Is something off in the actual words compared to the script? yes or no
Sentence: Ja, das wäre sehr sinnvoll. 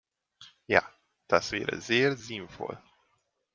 no